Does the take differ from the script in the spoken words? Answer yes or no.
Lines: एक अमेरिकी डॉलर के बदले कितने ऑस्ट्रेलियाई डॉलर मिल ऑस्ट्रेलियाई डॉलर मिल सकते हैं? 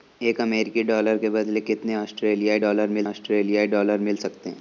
no